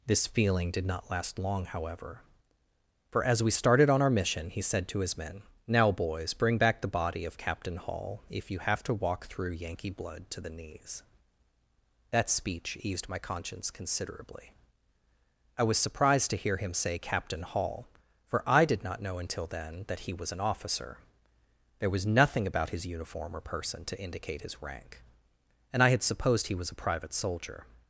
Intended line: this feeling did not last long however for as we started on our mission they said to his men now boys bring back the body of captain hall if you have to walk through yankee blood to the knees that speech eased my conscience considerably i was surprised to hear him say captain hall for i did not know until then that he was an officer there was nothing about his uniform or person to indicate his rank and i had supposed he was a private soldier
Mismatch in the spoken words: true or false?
true